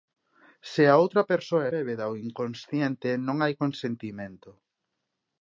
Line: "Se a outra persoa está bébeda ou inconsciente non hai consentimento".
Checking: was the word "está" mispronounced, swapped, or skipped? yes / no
yes